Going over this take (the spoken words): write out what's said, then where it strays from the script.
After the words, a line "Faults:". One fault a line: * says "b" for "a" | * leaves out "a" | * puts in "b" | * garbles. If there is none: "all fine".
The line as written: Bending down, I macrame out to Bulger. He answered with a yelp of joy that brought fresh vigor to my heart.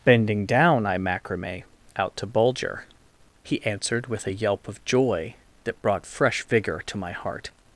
Bending down, I macrame out to Bulger. He answered with a yelp of joy that brought fresh vigor to my heart.
Faults:
all fine